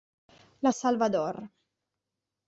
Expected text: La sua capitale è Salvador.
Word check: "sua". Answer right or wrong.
wrong